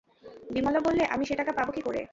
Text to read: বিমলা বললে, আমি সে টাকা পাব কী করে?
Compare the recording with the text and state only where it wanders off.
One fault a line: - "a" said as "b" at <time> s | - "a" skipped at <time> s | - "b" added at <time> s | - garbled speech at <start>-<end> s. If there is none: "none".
none